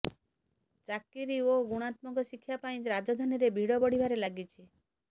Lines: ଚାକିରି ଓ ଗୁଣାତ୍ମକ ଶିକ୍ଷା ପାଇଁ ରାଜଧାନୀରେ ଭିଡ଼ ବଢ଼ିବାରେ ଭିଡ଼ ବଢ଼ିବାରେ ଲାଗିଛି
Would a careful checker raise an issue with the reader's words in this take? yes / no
yes